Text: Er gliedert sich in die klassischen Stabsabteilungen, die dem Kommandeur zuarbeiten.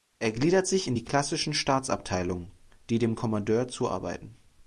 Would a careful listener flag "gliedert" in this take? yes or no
no